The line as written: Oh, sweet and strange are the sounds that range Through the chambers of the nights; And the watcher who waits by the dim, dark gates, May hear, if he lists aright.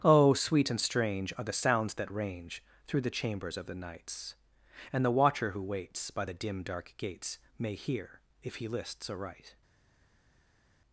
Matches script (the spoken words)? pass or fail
pass